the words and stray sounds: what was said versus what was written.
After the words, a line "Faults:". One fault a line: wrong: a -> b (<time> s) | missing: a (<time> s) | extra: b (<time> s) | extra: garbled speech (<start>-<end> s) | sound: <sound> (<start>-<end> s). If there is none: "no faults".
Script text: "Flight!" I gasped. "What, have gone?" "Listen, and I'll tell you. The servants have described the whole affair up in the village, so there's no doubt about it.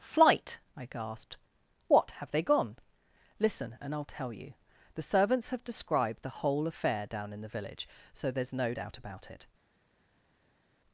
"Flight!" I gasped. "What, have they gone?" "Listen, and I'll tell you. The servants have described the whole affair down in the village, so there's no doubt about it.
Faults:
extra: they (2.3 s)
wrong: up -> down (7.0 s)